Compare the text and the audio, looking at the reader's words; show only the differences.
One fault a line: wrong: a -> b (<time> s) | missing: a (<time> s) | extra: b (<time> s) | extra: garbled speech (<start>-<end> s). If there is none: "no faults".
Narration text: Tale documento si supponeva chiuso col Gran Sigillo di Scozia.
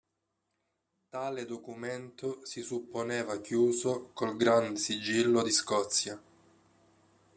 no faults